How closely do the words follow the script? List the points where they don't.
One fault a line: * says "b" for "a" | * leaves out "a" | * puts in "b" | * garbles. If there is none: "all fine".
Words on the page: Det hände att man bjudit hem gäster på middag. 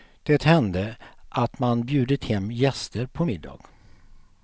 all fine